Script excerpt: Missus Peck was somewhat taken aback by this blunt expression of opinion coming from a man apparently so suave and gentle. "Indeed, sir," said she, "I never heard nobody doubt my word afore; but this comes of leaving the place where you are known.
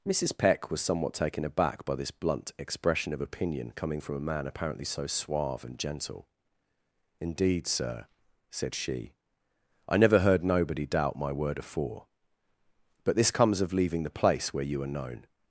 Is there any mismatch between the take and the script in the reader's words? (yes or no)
no